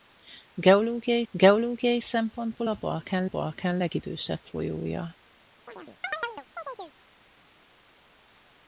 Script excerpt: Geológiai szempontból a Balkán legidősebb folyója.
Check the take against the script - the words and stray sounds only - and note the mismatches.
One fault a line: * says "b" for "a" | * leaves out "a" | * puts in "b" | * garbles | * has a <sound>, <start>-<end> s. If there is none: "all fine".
* puts in "geológiai"
* puts in "Balkán"
* has a chirp, 5.7-6.9 s